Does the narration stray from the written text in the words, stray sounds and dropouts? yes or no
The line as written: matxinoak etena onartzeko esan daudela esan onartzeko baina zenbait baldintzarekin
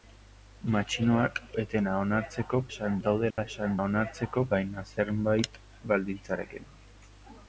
yes